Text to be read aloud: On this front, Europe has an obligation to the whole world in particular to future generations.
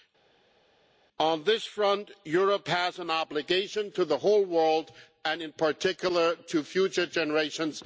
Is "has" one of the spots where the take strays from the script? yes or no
no